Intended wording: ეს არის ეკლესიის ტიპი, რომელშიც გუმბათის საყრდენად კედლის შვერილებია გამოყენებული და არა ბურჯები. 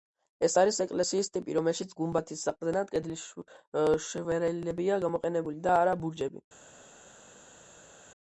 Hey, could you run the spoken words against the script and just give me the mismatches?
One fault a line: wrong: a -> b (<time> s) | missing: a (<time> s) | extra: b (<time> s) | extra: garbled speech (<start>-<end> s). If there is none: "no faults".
no faults